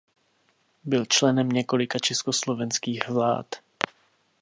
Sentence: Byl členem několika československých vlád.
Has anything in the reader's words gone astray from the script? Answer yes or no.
no